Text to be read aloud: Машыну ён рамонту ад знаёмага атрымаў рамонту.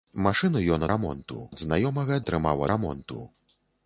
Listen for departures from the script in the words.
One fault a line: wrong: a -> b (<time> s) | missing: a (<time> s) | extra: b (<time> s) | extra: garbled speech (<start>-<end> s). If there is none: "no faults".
no faults